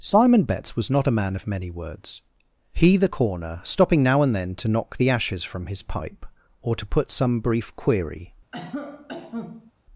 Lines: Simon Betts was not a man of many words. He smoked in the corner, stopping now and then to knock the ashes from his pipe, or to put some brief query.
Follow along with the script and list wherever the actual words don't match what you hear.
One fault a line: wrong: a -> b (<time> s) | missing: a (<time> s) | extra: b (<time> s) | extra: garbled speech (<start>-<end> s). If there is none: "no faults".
missing: smoked in (3.0 s)